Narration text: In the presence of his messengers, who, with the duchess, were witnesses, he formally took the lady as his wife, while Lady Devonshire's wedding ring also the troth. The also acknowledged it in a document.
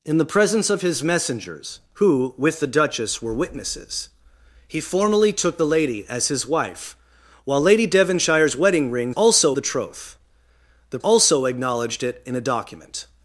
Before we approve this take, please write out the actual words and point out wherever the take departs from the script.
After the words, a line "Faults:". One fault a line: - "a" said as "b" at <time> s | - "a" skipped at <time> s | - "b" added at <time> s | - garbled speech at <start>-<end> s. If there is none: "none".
In the presence of his messengers, who, with the duchess, were witnesses, he formally took the lady as his wife, while Lady Devonshire's wedding ring also the troth. The also acknowledged it in a document.
Faults:
none